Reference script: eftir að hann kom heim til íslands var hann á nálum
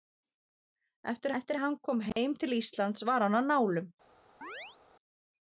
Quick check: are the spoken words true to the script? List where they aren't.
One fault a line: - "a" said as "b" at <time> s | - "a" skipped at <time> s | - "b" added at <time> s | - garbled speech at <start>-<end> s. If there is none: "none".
- "eftir" added at 1.4 s